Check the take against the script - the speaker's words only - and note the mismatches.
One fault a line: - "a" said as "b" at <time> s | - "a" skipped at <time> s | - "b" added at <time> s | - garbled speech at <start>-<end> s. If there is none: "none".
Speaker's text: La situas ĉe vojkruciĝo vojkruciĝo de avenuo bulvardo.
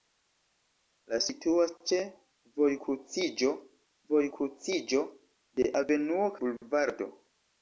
none